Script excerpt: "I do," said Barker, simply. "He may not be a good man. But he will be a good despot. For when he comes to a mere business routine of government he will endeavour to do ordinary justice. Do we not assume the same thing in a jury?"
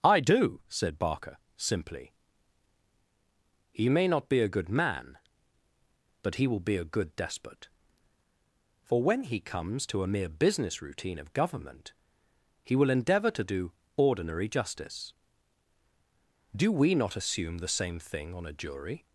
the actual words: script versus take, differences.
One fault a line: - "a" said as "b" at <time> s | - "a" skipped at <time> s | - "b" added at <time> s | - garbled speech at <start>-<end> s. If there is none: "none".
- "in" said as "on" at 18.3 s